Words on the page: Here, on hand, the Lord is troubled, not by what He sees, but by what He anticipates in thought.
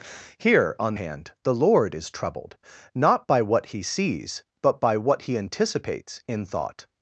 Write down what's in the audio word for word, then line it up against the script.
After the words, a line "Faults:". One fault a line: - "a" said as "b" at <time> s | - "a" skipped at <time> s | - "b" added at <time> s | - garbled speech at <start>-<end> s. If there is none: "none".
Here, on hand, the Lord is troubled, not by what He sees, but by what He anticipates in thought.
Faults:
none